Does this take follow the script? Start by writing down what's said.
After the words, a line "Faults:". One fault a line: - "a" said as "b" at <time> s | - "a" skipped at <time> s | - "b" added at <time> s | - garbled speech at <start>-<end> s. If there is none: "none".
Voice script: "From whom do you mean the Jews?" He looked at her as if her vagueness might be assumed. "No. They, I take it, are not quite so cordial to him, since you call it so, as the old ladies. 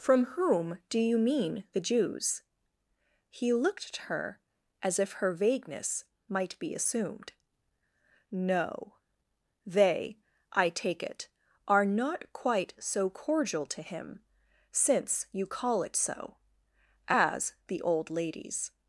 "From whom do you mean the Jews?" He looked at her as if her vagueness might be assumed. "No. They, I take it, are not quite so cordial to him, since you call it so, as the old ladies.
Faults:
none